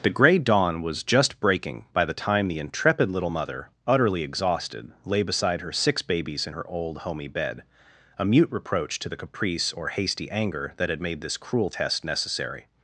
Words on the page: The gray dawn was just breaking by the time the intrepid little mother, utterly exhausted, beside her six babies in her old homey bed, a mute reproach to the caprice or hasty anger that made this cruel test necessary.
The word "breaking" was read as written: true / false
true